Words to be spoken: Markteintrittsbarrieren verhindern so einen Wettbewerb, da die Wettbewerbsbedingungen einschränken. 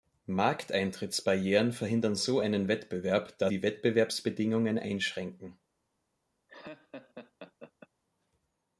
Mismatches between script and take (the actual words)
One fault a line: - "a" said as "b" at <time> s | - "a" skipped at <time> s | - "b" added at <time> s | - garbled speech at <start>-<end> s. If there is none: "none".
none